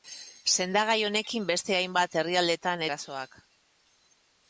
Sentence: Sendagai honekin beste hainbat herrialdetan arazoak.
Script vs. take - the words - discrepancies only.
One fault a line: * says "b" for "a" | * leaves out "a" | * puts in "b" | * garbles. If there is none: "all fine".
all fine